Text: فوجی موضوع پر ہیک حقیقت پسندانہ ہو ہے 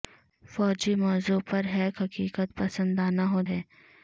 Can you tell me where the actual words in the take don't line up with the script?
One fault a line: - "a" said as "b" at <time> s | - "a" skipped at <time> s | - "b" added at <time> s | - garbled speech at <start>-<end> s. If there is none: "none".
none